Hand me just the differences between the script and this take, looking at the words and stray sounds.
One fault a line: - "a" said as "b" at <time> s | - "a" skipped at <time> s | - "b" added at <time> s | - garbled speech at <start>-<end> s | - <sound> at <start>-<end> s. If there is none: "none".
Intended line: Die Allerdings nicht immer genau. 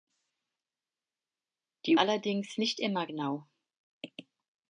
none